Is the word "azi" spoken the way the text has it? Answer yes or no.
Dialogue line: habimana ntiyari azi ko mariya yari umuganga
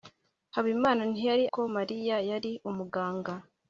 no